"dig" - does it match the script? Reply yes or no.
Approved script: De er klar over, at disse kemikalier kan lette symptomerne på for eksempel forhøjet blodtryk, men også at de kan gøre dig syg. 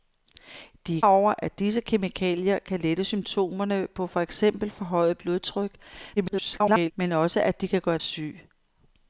no